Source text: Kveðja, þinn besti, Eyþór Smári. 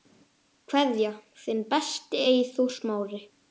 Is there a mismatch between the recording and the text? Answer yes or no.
no